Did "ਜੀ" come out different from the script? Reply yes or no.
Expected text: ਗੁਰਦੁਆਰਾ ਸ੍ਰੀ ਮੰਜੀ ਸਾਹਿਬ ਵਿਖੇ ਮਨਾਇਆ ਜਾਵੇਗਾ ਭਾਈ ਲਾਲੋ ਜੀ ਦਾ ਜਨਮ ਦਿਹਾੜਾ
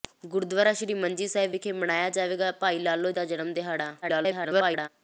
yes